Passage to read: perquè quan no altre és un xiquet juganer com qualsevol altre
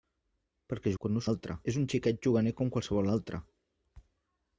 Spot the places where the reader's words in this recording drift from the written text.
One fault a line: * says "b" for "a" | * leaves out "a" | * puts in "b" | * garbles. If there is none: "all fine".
all fine